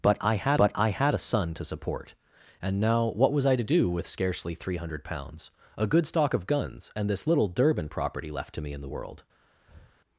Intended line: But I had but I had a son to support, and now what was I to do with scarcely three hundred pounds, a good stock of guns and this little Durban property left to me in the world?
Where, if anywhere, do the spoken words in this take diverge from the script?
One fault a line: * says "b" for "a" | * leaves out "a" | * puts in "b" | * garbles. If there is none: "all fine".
all fine